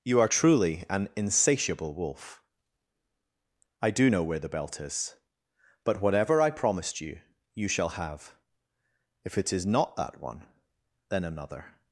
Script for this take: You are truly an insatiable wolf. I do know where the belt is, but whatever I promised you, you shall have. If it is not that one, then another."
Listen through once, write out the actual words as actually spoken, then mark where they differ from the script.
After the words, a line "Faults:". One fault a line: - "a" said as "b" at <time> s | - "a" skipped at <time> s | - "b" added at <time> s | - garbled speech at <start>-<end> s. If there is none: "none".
You are truly an insatiable wolf. I do know where the belt is, but whatever I promised you, you shall have. If it is not that one, then another."
Faults:
none